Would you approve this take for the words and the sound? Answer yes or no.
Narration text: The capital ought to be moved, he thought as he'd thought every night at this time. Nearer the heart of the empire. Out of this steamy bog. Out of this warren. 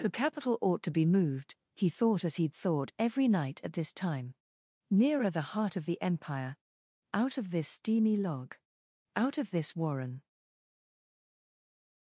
no